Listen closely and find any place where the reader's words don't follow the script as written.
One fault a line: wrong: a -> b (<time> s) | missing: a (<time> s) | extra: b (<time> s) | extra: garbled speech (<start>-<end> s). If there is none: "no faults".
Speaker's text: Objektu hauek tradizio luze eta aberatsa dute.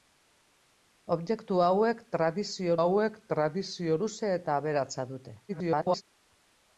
extra: hauek tradizio (2.8 s)
extra: garbled speech (5.5-6.0 s)